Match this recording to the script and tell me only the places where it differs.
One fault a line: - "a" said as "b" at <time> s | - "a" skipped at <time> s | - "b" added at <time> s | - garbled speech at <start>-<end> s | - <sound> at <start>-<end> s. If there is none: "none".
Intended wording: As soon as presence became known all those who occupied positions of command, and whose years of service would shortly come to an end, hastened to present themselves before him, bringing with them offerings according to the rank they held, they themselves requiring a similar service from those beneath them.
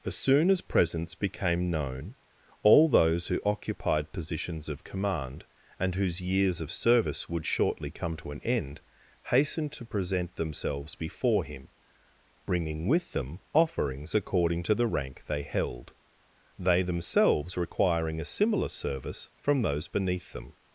none